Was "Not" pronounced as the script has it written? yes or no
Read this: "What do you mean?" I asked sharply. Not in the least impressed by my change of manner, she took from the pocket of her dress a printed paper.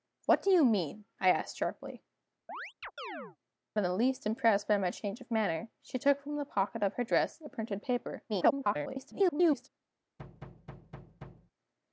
no